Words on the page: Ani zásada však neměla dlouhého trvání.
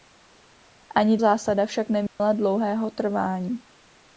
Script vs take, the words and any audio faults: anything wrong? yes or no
yes